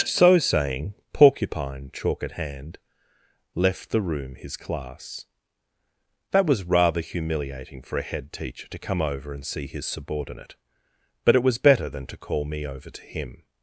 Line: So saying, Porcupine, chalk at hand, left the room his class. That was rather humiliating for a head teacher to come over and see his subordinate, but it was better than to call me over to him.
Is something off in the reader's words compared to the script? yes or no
no